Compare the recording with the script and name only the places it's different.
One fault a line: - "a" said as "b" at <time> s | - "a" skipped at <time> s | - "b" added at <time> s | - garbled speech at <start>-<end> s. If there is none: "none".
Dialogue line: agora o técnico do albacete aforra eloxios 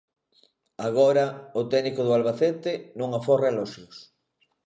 - "non" added at 3.0 s